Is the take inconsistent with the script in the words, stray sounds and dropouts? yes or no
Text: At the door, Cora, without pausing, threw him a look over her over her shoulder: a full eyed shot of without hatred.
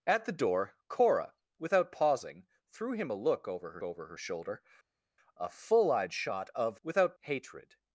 no